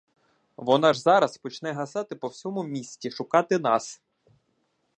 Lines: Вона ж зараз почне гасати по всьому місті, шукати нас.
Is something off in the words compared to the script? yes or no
no